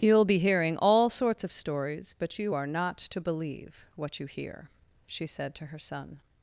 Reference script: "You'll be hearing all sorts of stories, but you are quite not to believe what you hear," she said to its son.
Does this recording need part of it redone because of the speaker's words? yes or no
yes